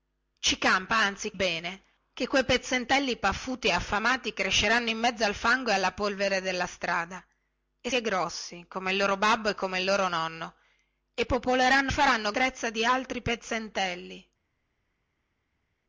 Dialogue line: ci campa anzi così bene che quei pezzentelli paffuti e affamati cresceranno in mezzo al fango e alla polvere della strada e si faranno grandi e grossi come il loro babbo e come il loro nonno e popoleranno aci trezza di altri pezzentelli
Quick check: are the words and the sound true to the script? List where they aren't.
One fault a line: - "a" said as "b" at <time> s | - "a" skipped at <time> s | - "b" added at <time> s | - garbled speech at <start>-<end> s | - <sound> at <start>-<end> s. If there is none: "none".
- "così" skipped at 1.3 s
- "si faranno grandi" skipped at 7.9 s
- "aci" said as "faranno" at 11.9 s